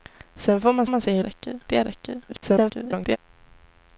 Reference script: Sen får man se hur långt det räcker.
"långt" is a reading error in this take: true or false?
true